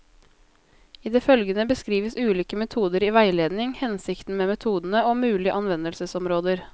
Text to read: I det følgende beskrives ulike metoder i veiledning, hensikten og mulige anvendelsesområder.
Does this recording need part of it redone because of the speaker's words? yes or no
yes